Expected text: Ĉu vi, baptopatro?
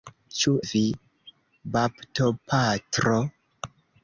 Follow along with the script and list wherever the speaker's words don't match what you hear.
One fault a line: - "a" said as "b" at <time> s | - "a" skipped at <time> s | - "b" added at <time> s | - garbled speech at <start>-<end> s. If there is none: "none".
none